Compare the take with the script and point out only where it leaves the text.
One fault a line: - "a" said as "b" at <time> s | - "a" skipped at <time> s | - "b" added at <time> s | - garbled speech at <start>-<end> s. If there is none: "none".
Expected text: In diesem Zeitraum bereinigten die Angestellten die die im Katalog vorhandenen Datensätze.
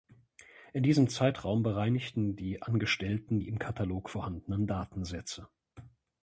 - "die" skipped at 3.5 s